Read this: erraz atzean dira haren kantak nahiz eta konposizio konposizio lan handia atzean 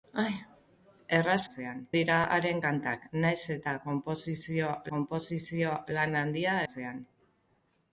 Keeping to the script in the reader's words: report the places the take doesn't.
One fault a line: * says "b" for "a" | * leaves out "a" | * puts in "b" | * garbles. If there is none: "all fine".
all fine